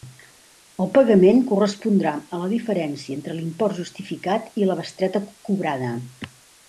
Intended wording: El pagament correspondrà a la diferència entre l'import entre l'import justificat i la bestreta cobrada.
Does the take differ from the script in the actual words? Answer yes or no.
yes